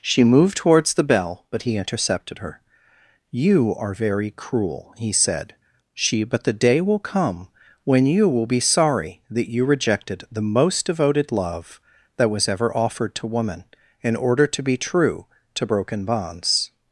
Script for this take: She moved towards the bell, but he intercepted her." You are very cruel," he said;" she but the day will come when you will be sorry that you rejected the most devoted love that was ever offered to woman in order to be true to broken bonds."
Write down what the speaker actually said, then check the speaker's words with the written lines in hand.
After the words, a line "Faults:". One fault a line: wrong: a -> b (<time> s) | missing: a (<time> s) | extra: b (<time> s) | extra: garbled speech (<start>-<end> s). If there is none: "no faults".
She moved towards the bell, but he intercepted her." You are very cruel," he said;" she but the day will come when you will be sorry that you rejected the most devoted love that was ever offered to woman in order to be true to broken bonds."
Faults:
no faults